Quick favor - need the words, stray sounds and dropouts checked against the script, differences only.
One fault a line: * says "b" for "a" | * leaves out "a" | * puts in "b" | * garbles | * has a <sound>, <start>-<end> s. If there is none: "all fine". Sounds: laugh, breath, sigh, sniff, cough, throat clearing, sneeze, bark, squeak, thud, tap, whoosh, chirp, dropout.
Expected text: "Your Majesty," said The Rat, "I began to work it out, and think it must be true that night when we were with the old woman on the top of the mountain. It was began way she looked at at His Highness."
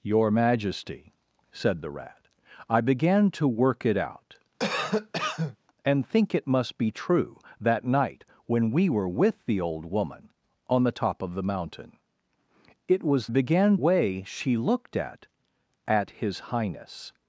* has a cough, 4.6-5.6 s